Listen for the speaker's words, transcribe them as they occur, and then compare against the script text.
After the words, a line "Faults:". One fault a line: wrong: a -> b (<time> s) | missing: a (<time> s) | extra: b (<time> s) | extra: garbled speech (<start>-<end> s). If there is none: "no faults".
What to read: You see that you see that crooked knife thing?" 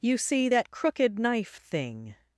You see that crooked knife thing?"
Faults:
missing: you see that (0.7 s)